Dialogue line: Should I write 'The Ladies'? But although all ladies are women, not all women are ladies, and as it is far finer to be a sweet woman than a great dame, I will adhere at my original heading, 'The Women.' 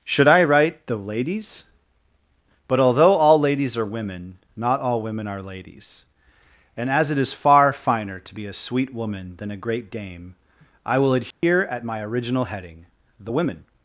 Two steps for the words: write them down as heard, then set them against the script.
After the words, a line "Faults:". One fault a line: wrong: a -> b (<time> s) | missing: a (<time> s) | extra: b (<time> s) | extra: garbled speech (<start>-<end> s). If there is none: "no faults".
Should I write 'The Ladies'? But although all ladies are women, not all women are ladies, and as it is far finer to be a sweet woman than a great dame, I will adhere at my original heading, 'The Women.'
Faults:
no faults